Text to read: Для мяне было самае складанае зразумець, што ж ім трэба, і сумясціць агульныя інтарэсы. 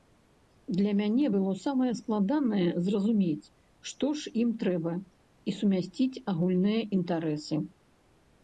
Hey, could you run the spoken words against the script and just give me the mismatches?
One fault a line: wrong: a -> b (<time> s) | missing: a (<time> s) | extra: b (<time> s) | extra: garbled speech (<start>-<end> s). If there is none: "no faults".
no faults